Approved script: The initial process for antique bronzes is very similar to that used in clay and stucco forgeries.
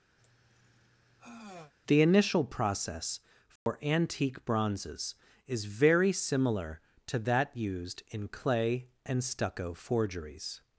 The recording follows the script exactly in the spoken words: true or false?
true